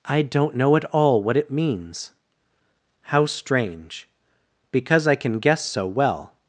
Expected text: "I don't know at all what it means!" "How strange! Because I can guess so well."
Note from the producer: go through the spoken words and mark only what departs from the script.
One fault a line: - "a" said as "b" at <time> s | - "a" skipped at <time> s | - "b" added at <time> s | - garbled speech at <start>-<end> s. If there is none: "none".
none